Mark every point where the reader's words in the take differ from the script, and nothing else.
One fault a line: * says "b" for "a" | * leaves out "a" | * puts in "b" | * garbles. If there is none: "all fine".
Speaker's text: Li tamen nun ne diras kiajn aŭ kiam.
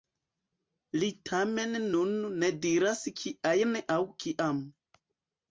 all fine